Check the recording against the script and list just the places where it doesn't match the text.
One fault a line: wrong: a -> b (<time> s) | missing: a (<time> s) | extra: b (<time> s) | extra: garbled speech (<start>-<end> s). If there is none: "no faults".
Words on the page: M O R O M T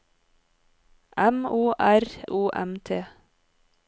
no faults